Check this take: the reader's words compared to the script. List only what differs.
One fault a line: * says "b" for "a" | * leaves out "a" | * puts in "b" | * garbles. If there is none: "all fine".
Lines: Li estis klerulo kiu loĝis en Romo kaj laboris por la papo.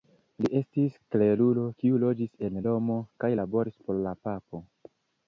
all fine